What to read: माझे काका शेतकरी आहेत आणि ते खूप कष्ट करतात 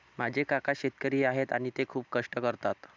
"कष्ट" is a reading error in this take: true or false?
false